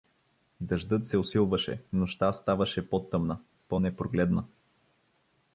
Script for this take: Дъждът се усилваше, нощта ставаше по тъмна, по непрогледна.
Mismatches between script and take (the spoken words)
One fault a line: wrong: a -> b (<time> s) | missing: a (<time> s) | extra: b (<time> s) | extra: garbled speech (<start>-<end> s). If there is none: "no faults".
no faults